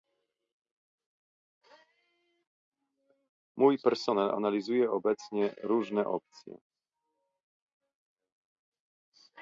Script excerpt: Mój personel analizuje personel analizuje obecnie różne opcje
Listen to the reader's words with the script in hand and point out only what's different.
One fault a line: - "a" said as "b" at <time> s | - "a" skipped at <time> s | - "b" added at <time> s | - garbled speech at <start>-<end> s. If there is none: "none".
- "personel analizuje" skipped at 4.9 s